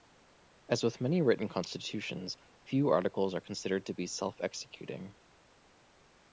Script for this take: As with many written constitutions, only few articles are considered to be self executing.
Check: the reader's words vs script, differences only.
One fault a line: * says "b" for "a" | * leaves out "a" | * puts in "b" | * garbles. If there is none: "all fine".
* leaves out "only"